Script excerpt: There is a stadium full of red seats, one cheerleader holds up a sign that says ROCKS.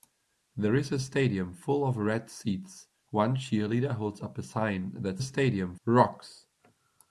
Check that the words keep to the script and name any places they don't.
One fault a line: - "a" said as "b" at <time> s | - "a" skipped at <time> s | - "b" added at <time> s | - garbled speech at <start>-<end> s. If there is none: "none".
- "says" said as "stadium" at 5.2 s